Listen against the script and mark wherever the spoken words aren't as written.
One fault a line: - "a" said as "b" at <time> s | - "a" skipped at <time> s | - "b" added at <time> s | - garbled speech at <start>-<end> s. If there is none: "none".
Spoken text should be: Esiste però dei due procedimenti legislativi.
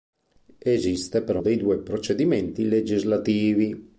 none